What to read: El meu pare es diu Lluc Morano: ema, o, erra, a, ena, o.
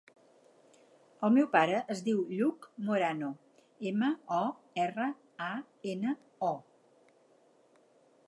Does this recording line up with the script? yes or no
yes